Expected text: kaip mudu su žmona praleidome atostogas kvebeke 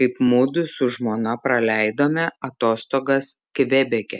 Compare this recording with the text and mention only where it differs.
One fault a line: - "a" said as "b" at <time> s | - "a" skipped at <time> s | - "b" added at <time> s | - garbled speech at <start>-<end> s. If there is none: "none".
none